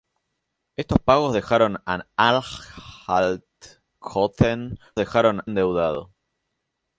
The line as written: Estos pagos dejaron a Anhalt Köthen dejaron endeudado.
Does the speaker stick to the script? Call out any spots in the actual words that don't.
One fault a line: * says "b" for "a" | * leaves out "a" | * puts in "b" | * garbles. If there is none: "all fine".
all fine